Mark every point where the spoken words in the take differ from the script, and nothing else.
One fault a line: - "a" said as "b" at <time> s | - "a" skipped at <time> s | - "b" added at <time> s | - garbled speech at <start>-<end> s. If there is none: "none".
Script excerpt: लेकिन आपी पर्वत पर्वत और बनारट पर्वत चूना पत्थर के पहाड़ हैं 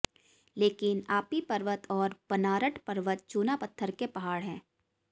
- "पर्वत" skipped at 1.9 s